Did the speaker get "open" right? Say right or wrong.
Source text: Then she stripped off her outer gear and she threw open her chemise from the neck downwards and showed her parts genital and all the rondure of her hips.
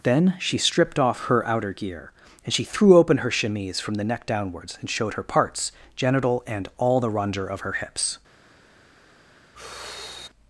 right